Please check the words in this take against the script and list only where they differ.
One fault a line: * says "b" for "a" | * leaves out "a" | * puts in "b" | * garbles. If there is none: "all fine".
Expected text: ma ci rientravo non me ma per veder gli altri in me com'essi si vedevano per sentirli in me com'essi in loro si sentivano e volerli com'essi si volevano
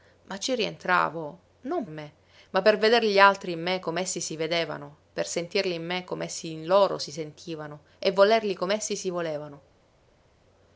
all fine